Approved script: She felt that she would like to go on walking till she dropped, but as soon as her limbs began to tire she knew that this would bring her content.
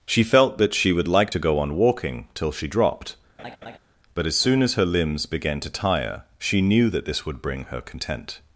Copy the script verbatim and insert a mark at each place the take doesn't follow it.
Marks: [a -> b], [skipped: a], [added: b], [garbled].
She felt that she would like to go on walking till she dropped, but as soon as her limbs began to tire she knew that this would bring her content.